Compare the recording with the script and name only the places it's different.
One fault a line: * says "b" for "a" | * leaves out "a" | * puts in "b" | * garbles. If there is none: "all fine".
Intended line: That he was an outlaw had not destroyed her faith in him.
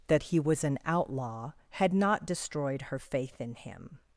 all fine